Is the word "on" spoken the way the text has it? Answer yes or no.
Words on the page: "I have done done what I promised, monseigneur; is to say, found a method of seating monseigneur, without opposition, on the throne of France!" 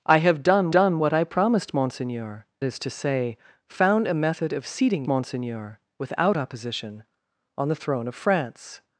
yes